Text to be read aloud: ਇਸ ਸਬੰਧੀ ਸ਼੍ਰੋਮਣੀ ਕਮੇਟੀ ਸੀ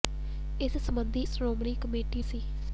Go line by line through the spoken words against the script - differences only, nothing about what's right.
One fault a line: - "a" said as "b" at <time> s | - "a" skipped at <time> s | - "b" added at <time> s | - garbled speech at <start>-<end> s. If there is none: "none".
none